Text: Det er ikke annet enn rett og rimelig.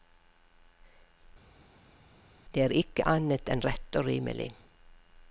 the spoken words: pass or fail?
pass